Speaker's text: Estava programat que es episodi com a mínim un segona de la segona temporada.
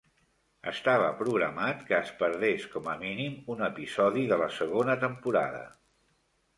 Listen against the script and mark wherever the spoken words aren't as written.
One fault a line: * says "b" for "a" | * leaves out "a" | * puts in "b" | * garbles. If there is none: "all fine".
* says "perdés" for "episodi"
* says "episodi" for "segona"